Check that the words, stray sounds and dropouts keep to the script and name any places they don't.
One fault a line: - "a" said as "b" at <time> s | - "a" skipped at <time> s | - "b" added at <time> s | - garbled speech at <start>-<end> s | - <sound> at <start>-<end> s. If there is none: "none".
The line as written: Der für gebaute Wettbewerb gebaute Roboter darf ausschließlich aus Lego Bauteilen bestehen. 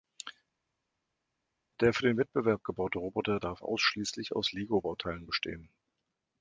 - "gebaute" said as "den" at 2.0 s